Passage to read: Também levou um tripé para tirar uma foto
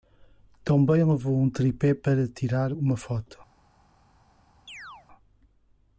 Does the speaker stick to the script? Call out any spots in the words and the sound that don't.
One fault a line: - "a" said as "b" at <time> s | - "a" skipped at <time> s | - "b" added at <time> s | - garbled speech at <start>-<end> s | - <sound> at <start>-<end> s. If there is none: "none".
- chirp at 4.7-5.1 s